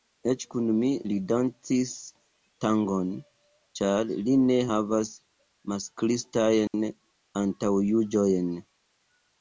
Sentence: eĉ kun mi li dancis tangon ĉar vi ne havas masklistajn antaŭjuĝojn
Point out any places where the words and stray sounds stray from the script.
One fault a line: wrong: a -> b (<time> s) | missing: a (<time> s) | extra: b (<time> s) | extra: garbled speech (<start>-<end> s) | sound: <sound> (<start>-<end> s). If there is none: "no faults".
wrong: vi -> li (4.3 s)
sound: dropout (6.7-6.7 s)